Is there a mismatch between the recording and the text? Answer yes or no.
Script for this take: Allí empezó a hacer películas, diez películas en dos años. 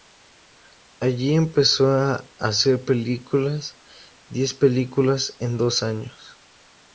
no